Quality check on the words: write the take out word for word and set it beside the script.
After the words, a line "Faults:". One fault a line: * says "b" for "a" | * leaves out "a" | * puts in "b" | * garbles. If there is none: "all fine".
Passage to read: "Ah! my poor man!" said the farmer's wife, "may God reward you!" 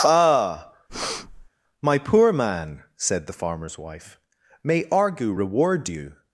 "Ah! my poor man!" said the farmer's wife, "may Argu reward you!"
Faults:
* says "Argu" for "God"